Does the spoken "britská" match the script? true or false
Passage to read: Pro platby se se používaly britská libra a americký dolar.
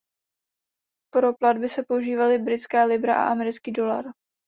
true